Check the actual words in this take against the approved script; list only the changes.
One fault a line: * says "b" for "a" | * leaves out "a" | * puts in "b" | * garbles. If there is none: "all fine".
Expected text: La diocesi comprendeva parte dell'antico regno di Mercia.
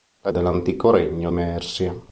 * leaves out "diocesi comprendeva parte"
* leaves out "di"